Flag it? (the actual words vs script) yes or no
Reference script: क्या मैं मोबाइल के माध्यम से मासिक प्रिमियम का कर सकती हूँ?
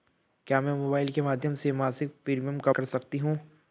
no